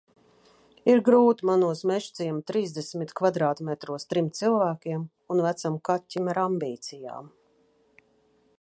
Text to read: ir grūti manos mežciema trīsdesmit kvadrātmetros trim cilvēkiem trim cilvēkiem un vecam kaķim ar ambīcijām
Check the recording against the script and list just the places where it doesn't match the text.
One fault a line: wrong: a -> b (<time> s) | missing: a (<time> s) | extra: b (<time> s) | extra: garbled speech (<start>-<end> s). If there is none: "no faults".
missing: trim cilvēkiem (5.0 s)